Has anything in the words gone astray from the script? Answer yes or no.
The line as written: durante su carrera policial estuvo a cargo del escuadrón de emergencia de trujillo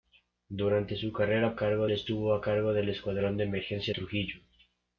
yes